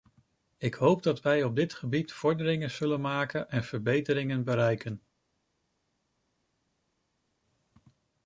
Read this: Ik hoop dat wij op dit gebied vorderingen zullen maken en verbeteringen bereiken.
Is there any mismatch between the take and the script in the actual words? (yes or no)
no